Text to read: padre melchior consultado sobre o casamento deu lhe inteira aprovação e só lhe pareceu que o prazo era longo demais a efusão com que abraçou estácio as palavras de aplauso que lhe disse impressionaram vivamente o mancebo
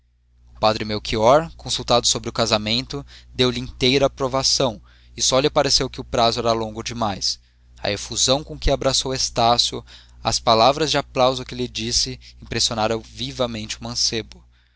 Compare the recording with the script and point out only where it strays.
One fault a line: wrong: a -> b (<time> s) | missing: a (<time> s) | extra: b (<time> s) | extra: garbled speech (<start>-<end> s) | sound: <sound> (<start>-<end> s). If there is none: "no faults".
no faults